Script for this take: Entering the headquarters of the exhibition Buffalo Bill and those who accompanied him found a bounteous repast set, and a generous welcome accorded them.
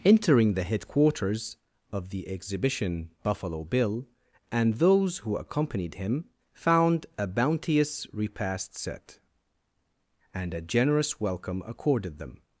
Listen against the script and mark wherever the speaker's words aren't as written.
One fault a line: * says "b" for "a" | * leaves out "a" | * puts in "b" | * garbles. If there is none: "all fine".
all fine